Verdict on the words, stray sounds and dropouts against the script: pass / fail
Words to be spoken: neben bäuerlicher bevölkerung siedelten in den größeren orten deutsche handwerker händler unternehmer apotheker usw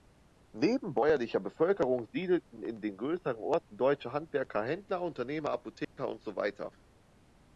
fail